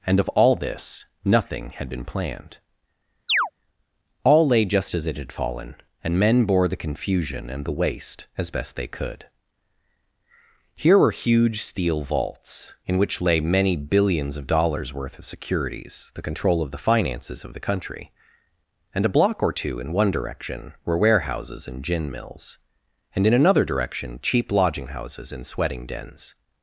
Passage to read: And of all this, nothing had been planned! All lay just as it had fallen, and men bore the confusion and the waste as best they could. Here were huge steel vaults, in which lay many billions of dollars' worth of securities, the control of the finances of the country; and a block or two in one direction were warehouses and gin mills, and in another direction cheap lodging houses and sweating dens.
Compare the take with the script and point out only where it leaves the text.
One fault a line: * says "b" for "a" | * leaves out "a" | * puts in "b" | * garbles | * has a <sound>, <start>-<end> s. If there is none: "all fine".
* has a chirp, 3.3-3.5 s